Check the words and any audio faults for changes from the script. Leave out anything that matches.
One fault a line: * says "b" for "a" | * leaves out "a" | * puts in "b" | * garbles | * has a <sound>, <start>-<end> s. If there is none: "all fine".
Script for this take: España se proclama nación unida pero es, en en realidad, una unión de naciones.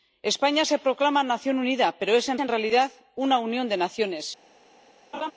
* has a laugh, 5.1-5.3 s